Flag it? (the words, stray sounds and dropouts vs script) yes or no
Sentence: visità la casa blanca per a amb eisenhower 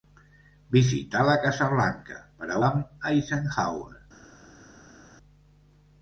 no